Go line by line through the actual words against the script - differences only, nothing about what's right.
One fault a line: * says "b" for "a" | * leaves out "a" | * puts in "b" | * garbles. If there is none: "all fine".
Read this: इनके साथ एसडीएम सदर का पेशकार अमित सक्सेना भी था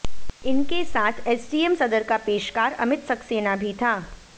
all fine